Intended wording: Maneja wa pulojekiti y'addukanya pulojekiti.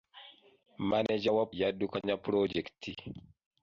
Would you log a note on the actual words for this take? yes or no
yes